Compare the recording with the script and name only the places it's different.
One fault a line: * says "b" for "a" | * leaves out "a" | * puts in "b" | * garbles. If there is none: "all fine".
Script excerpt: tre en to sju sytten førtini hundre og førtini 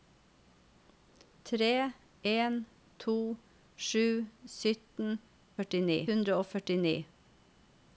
all fine